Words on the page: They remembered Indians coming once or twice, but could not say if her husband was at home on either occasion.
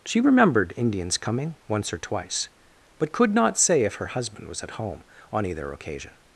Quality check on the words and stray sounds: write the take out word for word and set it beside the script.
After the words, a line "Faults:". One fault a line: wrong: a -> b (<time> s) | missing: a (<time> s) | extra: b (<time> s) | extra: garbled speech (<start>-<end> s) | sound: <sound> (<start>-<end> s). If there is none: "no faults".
She remembered Indians coming once or twice, but could not say if her husband was at home on either occasion.
Faults:
wrong: They -> She (0.0 s)